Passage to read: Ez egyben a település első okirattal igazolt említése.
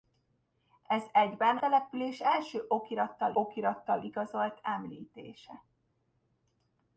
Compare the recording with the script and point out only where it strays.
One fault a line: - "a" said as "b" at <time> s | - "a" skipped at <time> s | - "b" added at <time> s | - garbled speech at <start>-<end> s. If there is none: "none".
- "a" skipped at 1.6 s
- "okirattal" added at 3.3 s